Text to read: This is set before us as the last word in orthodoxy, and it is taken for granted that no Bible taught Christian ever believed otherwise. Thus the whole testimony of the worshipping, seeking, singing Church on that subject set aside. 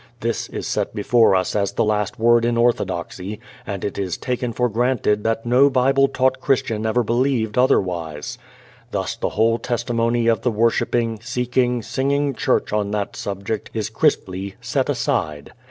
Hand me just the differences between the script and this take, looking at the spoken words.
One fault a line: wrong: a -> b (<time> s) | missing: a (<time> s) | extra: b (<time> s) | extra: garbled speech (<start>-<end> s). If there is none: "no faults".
extra: is crisply (13.7 s)